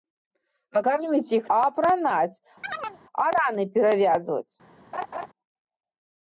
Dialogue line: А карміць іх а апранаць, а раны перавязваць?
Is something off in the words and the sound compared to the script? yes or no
yes